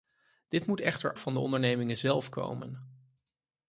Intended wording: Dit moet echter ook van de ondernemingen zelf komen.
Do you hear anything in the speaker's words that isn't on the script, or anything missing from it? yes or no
yes